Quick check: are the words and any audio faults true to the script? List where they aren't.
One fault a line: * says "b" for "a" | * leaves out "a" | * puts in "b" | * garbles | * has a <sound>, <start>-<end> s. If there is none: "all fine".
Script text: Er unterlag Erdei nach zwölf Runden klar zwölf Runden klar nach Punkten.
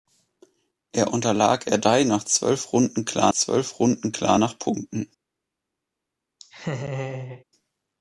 * has a laugh, 6.4-7.4 s